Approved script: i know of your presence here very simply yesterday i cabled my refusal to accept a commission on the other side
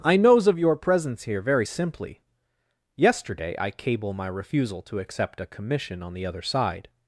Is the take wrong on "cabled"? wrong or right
wrong